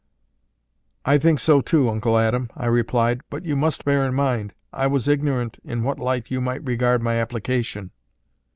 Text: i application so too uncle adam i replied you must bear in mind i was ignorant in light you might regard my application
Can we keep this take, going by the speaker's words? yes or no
no